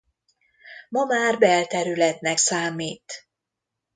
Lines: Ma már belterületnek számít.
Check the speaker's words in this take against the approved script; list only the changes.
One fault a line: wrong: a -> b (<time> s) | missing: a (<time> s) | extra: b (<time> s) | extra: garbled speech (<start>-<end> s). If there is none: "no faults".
no faults